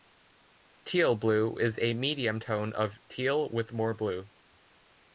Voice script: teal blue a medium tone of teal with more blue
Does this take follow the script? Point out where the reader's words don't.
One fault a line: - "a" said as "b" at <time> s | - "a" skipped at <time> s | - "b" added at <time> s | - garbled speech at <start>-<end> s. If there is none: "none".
- "is" added at 1.6 s